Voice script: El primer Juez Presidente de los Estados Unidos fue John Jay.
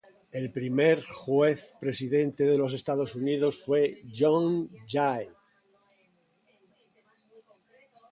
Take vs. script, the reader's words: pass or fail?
pass